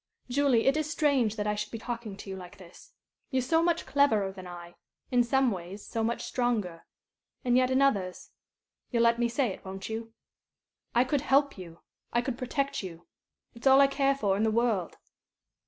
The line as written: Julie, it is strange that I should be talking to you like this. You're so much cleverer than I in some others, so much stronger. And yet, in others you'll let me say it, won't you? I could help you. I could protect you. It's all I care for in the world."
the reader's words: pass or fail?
fail